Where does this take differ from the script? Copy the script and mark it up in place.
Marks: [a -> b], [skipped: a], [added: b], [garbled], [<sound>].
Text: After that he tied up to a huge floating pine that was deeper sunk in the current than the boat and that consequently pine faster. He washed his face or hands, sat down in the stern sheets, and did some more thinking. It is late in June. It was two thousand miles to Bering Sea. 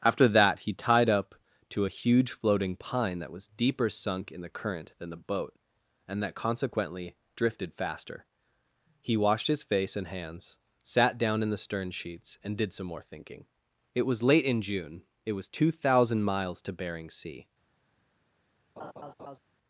After that he tied up to a huge floating pine that was deeper sunk in the current than the boat and that consequently [pine -> drifted] faster. He washed his face [or -> and] hands, sat down in the stern sheets, and did some more thinking. It [is -> was] late in June. It was two thousand miles to Bering Sea. [laugh]